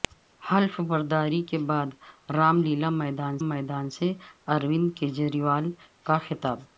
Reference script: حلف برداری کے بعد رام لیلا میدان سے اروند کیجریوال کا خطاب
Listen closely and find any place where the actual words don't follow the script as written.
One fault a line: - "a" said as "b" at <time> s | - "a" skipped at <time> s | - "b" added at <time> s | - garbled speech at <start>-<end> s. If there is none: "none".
- "میدان" added at 3.5 s